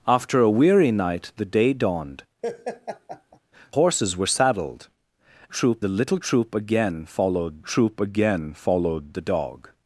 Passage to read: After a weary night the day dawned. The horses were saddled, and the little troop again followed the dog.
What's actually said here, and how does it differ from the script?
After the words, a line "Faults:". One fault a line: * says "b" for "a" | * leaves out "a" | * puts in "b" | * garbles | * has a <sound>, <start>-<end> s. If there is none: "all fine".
After a weary night the day dawned. Horses were saddled, troop the little troop again followed troop again followed the dog.
Faults:
* leaves out "The"
* has a laugh, 2.4-3.4 s
* says "troop" for "and"
* puts in "troop again followed"